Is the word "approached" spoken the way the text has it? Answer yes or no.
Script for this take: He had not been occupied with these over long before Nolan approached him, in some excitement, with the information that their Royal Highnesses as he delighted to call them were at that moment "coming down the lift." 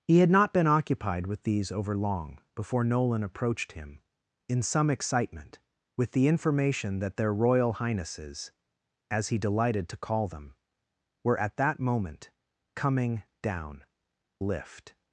yes